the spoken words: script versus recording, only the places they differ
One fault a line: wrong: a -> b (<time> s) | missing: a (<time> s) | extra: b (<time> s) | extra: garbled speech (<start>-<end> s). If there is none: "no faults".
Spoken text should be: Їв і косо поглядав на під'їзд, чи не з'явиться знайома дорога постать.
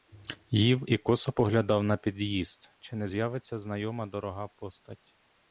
no faults